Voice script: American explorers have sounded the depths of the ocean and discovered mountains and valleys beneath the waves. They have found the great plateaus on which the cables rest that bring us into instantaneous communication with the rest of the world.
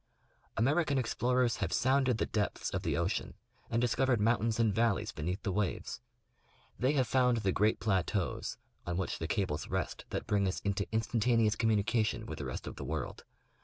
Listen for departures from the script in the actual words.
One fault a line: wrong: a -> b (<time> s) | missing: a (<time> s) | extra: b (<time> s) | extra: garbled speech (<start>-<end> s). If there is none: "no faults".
no faults